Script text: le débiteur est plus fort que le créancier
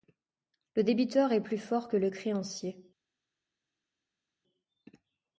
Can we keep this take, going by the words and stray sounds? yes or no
yes